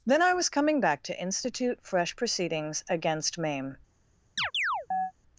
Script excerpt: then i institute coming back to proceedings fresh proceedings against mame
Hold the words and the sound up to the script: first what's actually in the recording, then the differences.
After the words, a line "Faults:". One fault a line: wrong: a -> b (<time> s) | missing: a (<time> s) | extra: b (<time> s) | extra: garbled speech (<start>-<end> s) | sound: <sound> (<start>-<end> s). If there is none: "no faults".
then i was coming back to institute fresh proceedings against mame
Faults:
wrong: institute -> was (0.3 s)
wrong: proceedings -> institute (1.2 s)
sound: chirp (4.4-5.1 s)